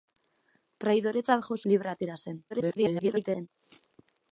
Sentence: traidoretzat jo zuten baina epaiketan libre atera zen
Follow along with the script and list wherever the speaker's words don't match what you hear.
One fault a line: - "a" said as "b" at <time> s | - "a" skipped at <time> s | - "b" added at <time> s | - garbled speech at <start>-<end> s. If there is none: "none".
- "zuten baina epaiketan" skipped at 1.6 s
- garbled speech at 2.5-3.5 s